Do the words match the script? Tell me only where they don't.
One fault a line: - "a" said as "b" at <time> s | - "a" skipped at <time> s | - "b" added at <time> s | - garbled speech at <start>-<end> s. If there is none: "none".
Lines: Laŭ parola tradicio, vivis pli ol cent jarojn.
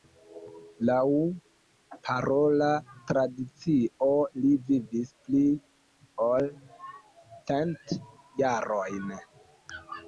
- "li" added at 4.4 s